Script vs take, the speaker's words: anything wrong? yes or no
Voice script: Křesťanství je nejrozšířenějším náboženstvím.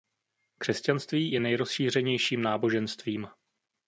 no